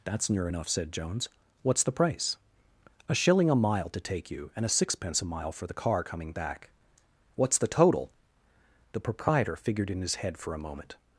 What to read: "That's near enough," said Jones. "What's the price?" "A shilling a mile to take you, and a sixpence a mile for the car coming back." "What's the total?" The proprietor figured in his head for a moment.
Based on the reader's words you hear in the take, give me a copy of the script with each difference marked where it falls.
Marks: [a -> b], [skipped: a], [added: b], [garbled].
"That's near enough," said Jones. "What's the price?" "A shilling a mile to take you, and a sixpence a mile for the car coming back." "What's the total?" The proprietor figured in his head for a moment.